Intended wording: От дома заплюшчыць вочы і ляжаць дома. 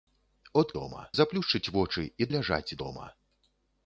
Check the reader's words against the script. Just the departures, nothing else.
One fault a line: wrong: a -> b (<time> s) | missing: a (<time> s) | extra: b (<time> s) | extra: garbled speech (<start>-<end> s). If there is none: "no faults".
no faults